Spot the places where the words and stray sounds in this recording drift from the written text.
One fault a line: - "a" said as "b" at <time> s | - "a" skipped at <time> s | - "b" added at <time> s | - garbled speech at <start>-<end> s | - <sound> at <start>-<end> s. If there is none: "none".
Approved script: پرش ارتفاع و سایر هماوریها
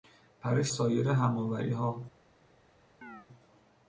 - "ارتفاع و" skipped at 0.7 s
- chirp at 3.0-3.3 s